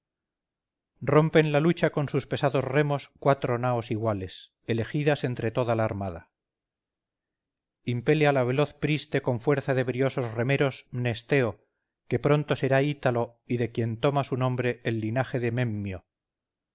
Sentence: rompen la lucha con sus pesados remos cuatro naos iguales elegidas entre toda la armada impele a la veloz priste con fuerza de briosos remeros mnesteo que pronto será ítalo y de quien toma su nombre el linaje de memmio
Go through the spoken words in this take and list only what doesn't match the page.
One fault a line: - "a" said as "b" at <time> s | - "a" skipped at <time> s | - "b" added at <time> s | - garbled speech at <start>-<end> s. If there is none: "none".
none